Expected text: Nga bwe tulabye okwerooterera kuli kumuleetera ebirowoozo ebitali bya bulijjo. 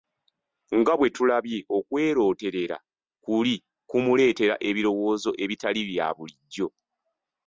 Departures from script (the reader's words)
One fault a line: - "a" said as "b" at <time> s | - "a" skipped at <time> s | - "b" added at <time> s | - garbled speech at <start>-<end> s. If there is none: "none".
none